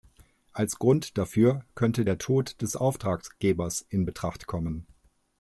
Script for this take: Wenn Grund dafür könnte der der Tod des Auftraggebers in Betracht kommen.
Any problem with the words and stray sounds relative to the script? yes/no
yes